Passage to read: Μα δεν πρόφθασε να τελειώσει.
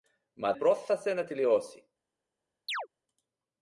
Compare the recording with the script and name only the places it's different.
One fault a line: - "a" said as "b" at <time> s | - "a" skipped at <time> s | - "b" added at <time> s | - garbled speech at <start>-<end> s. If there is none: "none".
- "δεν" skipped at 0.5 s